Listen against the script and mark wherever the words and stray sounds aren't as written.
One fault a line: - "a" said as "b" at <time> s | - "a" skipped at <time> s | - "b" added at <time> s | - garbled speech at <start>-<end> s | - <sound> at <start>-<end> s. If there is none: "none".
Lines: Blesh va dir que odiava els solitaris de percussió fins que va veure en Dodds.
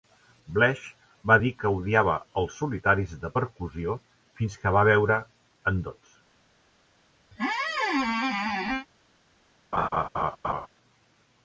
- squeak at 7.3-8.9 s
- laugh at 9.7-10.7 s